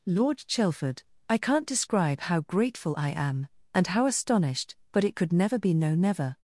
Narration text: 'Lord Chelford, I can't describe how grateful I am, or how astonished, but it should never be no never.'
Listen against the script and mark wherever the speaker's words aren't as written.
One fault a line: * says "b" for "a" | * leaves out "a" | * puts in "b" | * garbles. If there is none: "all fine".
* says "and" for "or"
* says "could" for "should"